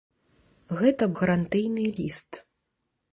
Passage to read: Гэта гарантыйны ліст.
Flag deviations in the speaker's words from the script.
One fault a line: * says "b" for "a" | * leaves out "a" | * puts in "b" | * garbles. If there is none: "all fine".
all fine